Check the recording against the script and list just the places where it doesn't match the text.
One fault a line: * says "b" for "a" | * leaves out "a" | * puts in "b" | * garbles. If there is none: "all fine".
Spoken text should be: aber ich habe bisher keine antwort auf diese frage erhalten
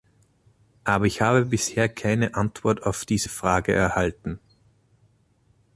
all fine